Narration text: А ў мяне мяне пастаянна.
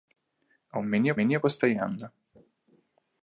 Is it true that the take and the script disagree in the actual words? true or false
false